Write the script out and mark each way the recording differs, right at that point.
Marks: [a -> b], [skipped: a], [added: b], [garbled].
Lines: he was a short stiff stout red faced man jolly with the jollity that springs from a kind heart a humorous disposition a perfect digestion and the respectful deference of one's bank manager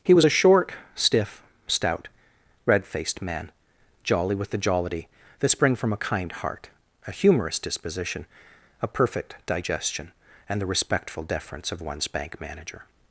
he was a short stiff stout red faced man jolly with the jollity that [springs -> spring] from a kind heart a humorous disposition a perfect digestion and the respectful deference of one's bank manager